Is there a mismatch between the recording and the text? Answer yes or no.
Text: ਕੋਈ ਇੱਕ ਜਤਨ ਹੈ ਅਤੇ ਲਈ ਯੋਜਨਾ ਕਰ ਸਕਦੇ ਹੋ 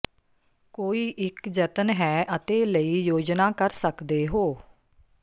no